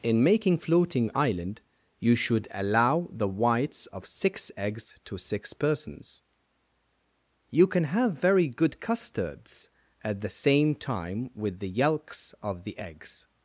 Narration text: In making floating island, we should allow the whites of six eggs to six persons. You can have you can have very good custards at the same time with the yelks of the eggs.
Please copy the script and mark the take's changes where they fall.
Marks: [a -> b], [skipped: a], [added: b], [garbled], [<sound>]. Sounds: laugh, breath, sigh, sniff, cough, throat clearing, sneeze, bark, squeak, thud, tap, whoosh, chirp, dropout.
In making floating island, [we -> you] should allow the whites of six eggs to six persons. You can have [skipped: you can have] very good custards at the same time with the yelks of the eggs.